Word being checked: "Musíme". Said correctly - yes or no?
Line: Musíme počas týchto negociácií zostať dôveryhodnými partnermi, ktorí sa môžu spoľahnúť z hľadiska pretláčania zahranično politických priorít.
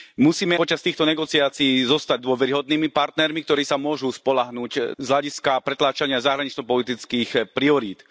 yes